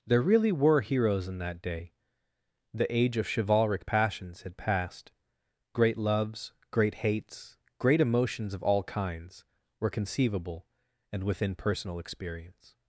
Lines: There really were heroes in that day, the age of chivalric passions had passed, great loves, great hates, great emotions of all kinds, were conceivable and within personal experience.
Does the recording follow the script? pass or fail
pass